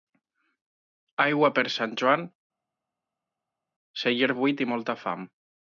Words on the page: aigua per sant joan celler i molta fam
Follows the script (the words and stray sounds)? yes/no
no